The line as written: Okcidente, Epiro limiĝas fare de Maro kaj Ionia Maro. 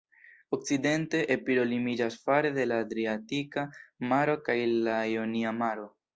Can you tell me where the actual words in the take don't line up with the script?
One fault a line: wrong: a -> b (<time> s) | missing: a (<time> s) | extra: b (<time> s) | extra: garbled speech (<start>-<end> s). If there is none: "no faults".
extra: la Adriatika (2.7 s)
extra: la (4.9 s)